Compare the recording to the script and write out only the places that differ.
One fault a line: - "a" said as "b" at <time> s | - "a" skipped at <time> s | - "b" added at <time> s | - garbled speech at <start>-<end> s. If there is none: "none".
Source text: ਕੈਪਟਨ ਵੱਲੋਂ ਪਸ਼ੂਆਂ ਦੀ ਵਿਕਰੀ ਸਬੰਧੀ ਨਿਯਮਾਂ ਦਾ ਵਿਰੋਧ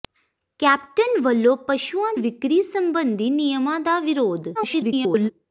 - "ਦੀ" skipped at 2.1 s
- garbled speech at 4.5-5.3 s